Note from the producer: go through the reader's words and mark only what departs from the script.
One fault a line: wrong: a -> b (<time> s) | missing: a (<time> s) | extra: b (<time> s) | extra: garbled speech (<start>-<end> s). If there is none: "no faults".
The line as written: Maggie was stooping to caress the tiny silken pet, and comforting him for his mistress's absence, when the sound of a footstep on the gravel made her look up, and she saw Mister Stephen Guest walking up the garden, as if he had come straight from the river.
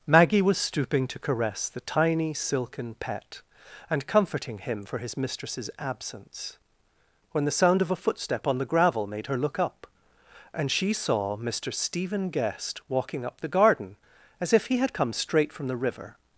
no faults